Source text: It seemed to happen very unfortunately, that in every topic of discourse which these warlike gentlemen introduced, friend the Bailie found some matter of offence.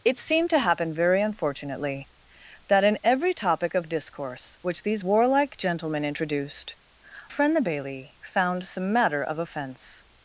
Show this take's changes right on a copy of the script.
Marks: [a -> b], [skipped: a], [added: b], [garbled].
It seemed to happen very unfortunately, that in every topic of discourse which these warlike gentlemen introduced, friend the Bailie found some matter of offence.